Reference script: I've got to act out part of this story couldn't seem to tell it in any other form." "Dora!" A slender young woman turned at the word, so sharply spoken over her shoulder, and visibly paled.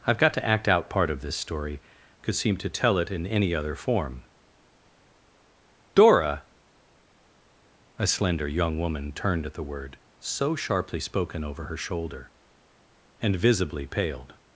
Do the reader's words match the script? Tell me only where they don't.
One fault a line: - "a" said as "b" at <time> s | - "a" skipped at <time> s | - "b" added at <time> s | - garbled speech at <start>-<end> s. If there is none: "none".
- "couldn't" said as "could" at 2.2 s